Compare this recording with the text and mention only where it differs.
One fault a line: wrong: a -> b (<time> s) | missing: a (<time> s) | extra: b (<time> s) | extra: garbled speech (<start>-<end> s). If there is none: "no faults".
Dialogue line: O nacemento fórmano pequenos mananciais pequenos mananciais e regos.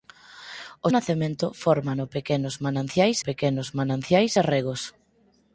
no faults